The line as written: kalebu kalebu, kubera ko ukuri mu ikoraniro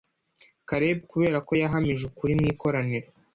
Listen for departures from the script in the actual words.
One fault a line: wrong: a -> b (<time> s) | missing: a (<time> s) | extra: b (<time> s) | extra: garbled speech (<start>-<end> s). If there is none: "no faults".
missing: kalebu (1.0 s)
extra: yahamije (1.6 s)